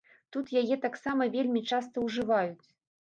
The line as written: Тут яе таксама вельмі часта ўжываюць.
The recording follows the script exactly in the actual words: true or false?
true